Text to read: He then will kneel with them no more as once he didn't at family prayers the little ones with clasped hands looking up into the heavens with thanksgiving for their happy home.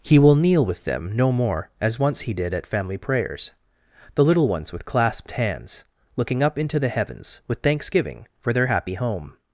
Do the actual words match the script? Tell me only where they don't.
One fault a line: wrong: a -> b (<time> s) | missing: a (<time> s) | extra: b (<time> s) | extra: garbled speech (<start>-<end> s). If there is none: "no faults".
missing: then (0.2 s)
wrong: didn't -> did (2.3 s)